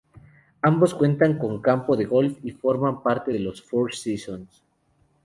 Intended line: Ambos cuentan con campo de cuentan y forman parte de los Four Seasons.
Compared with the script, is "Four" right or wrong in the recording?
right